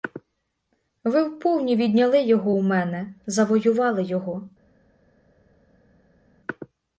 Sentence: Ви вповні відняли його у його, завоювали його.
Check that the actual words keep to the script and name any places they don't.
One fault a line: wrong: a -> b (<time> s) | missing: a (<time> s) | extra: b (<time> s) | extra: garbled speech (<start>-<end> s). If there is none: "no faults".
wrong: його -> мене (2.6 s)